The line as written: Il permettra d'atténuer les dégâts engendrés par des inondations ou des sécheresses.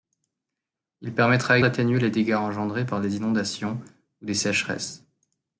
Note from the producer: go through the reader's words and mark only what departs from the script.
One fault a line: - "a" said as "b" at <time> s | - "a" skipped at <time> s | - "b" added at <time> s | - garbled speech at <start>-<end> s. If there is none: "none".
none